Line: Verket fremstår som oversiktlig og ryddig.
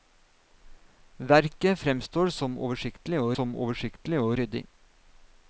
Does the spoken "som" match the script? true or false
true